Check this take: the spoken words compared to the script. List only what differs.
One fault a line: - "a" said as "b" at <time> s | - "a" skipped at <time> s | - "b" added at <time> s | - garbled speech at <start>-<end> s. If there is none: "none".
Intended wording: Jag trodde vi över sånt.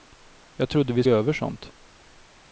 none